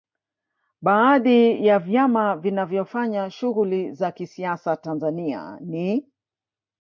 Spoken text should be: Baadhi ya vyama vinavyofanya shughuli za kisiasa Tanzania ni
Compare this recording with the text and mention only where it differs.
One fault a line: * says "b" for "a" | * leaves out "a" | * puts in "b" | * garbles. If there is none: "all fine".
all fine